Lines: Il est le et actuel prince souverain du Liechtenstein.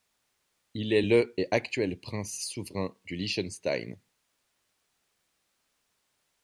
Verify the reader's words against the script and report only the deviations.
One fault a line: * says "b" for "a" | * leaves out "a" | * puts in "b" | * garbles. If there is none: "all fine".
all fine